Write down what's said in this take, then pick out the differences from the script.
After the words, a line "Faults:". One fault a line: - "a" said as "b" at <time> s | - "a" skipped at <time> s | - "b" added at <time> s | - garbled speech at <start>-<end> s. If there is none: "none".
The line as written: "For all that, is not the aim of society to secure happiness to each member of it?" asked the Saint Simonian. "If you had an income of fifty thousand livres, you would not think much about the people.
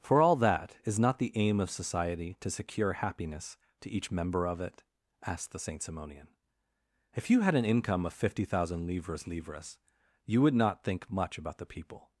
"For all that, is not the aim of society to secure happiness to each member of it?" asked the Saint Simonian. "If you had an income of fifty thousand livres livres, you would not think much about the people.
Faults:
- "livres" added at 9.3 s